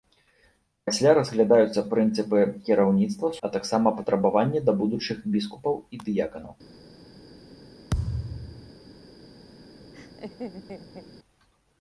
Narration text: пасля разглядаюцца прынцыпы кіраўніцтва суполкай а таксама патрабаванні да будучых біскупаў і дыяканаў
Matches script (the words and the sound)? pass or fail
fail